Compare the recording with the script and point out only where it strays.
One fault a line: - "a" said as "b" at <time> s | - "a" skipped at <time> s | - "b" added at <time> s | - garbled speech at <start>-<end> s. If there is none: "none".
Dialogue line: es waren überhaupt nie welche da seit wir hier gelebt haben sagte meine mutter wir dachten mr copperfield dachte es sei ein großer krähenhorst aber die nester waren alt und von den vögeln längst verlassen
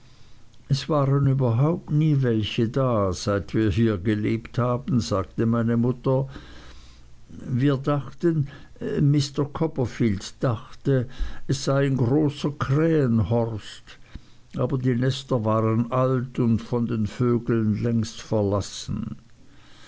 none